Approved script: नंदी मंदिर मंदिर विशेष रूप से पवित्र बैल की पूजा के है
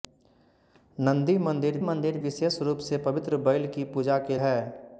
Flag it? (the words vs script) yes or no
no